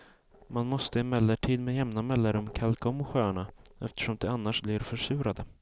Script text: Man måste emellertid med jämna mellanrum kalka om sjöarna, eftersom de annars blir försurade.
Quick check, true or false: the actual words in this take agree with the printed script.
true